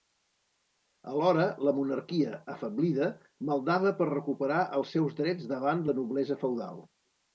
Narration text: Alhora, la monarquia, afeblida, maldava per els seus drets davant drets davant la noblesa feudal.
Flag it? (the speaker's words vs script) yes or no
yes